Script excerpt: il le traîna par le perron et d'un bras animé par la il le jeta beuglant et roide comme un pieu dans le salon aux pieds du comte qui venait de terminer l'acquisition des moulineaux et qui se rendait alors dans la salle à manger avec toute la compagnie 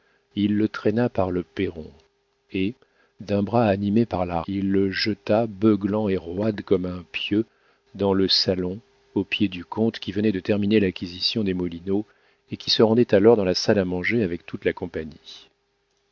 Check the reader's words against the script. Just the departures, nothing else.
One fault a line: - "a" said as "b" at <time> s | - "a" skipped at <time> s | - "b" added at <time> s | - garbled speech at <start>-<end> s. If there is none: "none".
none